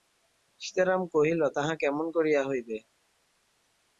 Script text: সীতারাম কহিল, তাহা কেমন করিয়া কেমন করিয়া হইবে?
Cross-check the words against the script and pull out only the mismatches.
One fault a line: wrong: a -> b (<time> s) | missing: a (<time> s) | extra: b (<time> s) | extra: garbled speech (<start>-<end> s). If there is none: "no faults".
missing: কেমন করিয়া (2.4 s)